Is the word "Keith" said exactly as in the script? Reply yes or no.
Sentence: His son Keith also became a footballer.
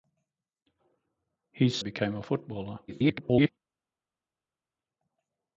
no